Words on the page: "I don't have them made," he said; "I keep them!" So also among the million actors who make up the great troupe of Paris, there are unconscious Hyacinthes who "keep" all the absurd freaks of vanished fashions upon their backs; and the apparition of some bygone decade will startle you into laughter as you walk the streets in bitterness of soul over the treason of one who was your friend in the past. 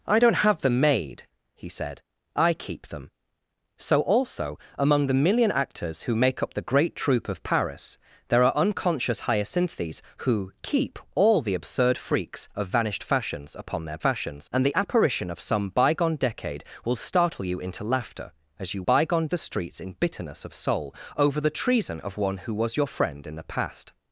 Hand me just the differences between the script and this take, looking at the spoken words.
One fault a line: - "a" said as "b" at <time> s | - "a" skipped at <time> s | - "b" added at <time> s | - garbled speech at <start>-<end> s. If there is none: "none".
- "backs" said as "fashions" at 14.0 s
- "walk" said as "bygone" at 18.8 s